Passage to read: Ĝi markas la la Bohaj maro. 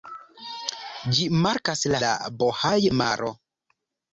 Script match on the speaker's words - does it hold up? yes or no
yes